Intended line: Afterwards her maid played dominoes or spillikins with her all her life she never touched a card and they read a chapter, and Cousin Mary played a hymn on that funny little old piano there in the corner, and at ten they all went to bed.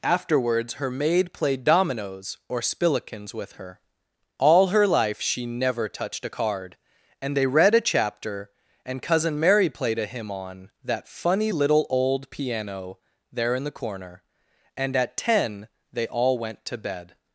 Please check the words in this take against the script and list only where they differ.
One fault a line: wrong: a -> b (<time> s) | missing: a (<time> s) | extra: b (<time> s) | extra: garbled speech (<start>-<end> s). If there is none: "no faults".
no faults